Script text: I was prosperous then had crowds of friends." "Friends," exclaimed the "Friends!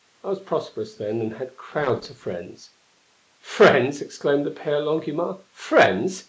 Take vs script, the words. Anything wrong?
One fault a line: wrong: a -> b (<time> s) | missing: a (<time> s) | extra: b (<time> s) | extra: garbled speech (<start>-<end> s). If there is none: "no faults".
extra: and (1.2 s)
extra: Père Longuemare (4.5 s)